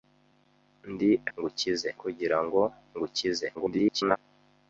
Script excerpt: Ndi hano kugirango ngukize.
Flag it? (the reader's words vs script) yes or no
yes